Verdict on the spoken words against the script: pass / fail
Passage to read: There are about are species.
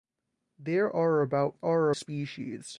pass